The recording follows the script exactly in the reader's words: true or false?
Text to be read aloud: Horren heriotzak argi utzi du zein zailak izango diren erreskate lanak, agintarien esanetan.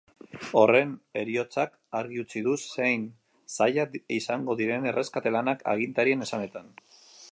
true